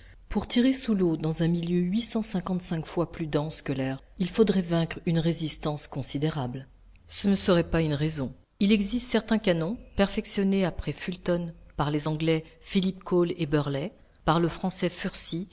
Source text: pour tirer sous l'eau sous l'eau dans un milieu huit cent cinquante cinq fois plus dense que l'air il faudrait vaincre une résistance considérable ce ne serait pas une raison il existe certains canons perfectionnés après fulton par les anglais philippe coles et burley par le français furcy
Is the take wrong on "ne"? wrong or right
right